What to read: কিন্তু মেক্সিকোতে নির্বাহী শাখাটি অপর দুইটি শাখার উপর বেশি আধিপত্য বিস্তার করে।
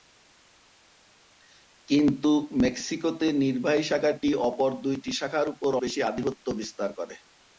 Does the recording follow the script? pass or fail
pass